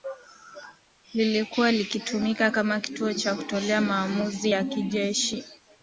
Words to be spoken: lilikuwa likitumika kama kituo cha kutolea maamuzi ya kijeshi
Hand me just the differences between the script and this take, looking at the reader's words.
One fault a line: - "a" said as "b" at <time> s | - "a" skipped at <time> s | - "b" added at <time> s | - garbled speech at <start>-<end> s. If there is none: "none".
none